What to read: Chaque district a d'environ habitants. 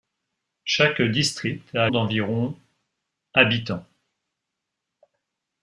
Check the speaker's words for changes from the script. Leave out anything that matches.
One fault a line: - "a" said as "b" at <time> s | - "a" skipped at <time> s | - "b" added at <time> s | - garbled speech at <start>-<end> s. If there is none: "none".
none